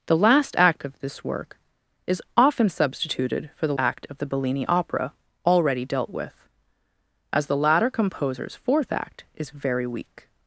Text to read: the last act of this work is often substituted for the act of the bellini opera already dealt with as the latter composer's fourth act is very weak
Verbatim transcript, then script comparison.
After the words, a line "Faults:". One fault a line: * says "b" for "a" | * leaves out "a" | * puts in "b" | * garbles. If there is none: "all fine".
the last act of this work is often substituted for the act of the bellini opera already dealt with as the latter composer's fourth act is very weak
Faults:
all fine